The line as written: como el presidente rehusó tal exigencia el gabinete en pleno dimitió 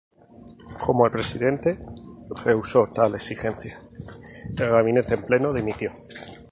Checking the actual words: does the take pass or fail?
pass